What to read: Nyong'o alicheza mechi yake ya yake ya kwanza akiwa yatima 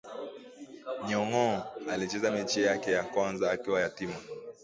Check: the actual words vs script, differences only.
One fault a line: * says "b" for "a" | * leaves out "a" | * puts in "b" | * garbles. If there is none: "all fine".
* leaves out "yake ya"